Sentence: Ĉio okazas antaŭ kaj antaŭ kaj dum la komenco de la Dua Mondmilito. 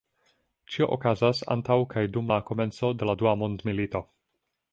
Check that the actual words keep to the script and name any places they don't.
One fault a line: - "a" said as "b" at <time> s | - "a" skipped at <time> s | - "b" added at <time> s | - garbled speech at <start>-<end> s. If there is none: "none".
- "antaŭ kaj" skipped at 2.0 s